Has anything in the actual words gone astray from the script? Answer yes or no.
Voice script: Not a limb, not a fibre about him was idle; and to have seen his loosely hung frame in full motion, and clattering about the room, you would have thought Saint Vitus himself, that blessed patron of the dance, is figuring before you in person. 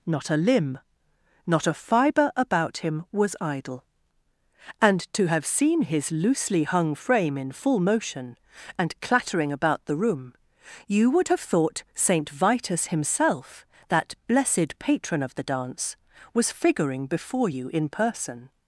yes